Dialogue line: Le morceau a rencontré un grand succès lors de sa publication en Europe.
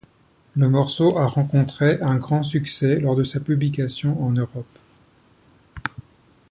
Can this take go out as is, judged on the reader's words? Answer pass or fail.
pass